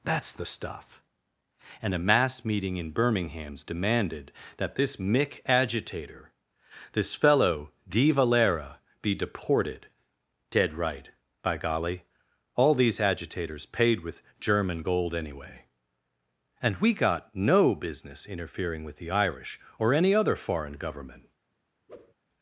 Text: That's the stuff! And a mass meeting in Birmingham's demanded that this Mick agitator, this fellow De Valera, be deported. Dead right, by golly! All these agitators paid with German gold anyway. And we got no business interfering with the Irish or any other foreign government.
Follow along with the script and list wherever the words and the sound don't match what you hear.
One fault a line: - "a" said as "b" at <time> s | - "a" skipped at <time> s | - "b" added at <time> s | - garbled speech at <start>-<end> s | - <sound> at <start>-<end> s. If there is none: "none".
- whoosh at 21.9-22.1 s